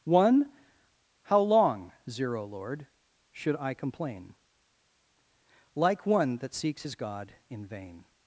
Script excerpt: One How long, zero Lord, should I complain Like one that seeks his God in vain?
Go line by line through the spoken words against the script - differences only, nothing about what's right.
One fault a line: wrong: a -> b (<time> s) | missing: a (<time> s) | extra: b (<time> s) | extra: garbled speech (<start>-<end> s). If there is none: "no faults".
no faults